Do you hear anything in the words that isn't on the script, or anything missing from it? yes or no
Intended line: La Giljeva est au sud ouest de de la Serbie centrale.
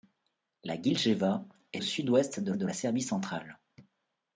no